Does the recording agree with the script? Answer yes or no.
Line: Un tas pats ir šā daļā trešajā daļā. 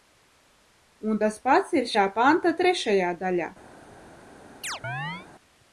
no